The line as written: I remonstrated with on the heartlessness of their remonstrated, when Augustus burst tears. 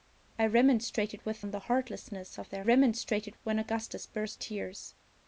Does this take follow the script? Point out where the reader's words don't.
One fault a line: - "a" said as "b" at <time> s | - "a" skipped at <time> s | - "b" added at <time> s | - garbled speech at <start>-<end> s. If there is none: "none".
none